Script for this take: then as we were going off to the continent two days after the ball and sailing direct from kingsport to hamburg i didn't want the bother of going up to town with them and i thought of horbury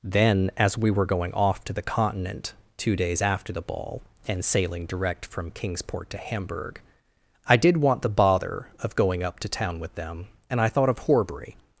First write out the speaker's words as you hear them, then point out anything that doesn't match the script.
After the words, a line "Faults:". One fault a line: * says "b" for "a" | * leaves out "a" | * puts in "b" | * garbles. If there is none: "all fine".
then as we were going off to the continent two days after the ball and sailing direct from kingsport to hamburg i did want the bother of going up to town with them and i thought of horbury
Faults:
* says "did" for "didn't"